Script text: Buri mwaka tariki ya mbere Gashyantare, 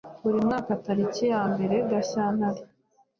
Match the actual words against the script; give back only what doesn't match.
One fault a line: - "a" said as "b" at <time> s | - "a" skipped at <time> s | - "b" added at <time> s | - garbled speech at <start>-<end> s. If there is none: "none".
none